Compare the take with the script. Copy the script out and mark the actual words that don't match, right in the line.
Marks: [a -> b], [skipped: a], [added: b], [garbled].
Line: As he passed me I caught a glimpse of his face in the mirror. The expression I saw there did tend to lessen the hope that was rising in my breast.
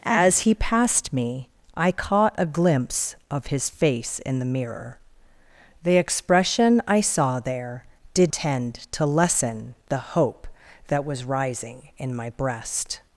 As he passed me I caught a glimpse of his face in the mirror. The expression I saw there did tend to lessen the hope that was rising in my breast.